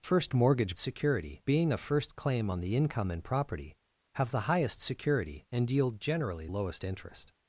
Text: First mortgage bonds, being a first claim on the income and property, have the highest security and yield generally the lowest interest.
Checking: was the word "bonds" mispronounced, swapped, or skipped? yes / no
yes